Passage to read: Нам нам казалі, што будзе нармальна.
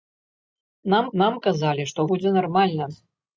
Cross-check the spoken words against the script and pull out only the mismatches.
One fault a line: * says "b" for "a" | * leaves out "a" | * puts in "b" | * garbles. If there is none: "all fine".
all fine